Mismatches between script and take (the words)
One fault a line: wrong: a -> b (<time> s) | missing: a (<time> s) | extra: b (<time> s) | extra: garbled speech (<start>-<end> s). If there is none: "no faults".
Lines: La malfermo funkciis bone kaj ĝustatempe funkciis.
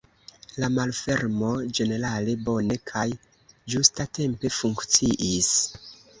wrong: funkciis -> ĝenerale (1.8 s)